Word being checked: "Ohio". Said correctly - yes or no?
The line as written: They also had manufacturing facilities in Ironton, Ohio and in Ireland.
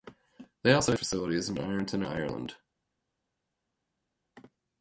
no